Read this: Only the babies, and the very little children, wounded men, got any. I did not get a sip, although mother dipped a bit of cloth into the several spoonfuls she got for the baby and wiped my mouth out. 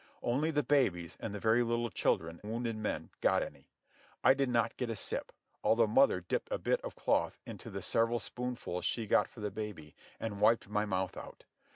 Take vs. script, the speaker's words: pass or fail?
pass